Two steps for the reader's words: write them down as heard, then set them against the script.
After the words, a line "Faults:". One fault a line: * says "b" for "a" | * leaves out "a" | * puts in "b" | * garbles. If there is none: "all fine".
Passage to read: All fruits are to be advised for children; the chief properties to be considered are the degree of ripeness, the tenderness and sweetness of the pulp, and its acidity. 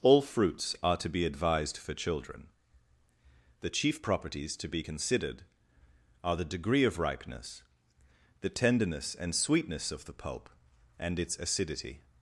All fruits are to be advised for children; the chief properties to be considered are the degree of ripeness, the tenderness and sweetness of the pulp, and its acidity.
Faults:
all fine